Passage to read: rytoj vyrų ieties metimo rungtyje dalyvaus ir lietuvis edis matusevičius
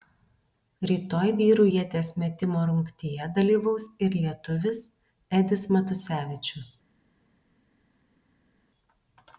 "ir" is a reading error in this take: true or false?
false